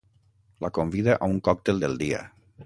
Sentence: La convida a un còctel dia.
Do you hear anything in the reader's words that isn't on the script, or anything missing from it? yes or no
yes